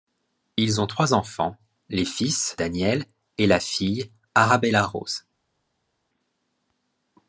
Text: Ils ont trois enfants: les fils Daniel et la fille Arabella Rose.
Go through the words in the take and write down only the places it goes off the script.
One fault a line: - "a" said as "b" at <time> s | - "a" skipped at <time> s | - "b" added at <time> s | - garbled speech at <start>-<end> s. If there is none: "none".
none